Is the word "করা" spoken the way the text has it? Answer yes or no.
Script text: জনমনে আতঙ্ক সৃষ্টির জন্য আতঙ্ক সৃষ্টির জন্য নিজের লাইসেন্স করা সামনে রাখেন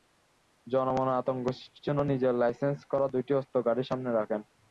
no